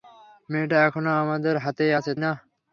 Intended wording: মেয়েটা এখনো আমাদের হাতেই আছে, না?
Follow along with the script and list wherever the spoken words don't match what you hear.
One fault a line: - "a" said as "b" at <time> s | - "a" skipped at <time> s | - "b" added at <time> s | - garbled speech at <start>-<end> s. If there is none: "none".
none